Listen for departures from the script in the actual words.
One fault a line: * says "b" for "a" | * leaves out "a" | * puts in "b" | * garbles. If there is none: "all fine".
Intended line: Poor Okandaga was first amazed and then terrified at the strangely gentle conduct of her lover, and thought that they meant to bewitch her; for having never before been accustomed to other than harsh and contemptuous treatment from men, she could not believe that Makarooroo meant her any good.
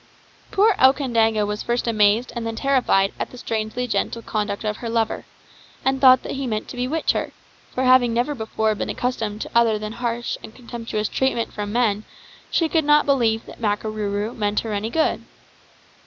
* says "he" for "they"